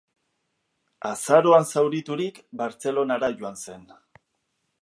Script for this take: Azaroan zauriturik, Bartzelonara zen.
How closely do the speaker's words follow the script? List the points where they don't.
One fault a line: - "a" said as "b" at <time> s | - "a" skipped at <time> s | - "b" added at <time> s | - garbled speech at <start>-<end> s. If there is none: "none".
- "joan" added at 3.4 s